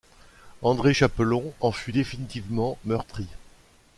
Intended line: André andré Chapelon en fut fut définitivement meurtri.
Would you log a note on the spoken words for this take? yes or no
yes